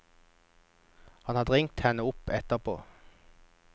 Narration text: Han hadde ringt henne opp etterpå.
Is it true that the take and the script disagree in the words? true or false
false